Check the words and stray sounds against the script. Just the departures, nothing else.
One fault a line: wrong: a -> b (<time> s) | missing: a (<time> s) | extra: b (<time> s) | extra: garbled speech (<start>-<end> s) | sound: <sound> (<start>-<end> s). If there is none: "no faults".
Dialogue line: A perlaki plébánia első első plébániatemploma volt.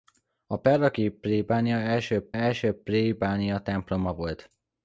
no faults